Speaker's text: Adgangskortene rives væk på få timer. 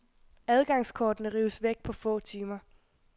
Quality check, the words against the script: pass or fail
pass